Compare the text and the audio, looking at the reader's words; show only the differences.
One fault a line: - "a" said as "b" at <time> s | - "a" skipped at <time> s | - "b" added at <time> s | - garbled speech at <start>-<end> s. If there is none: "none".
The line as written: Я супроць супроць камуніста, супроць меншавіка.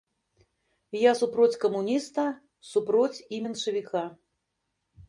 - "супроць" skipped at 1.6 s
- "і" added at 3.3 s